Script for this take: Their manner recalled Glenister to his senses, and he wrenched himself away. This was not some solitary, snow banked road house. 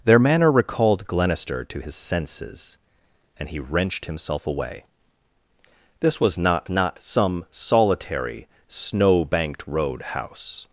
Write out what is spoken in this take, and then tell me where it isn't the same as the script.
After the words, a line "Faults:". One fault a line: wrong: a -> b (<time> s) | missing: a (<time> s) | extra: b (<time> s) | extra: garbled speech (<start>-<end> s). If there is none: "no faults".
Their manner recalled Glenister to his senses, and he wrenched himself away. This was not not some solitary, snow banked road house.
Faults:
extra: not (6.7 s)